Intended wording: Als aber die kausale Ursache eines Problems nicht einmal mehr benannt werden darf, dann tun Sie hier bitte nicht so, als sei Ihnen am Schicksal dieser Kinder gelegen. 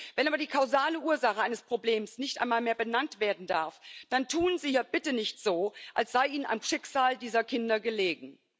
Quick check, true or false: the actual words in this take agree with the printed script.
false